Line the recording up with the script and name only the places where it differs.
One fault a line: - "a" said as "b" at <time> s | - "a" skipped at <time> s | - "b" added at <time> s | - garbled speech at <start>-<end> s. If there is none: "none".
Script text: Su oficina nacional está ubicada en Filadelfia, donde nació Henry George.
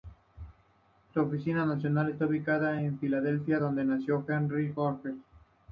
none